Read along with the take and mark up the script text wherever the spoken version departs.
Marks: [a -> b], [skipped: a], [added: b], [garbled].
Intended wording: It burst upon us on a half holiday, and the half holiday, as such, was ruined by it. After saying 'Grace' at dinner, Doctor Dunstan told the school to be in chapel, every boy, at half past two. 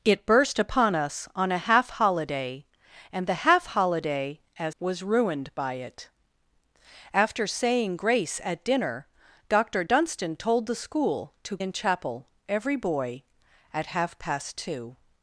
It burst upon us on a half holiday, and the half holiday, as [skipped: such,] was ruined by it. After saying 'Grace' at dinner, Doctor Dunstan told the school to [skipped: be] in chapel, every boy, at half past two.